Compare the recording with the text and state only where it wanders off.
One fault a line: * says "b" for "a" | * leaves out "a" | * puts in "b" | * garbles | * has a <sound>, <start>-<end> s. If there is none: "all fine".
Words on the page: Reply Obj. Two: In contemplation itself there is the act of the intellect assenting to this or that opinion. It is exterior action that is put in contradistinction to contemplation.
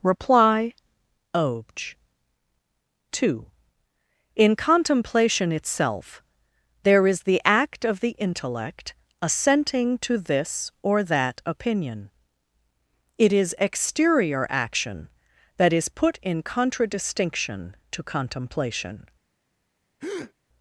* has a breath, 20.0-20.3 s